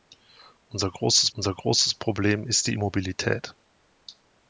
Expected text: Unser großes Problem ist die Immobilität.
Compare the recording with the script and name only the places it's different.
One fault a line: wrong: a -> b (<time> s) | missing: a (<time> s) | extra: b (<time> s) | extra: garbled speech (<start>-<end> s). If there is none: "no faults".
extra: unser großes (1.4 s)